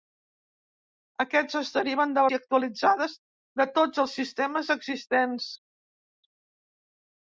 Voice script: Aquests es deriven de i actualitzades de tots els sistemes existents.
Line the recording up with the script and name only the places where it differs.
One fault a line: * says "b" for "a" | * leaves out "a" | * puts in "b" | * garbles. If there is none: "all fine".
all fine